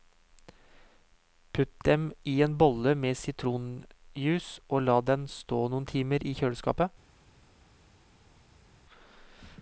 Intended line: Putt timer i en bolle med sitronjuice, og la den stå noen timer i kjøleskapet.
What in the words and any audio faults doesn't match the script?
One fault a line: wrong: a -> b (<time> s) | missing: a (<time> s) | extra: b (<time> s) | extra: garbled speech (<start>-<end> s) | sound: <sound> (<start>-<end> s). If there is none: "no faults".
wrong: timer -> dem (1.9 s)